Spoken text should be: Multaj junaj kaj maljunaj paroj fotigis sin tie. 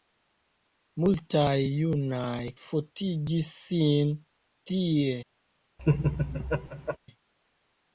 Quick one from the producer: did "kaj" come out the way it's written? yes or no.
no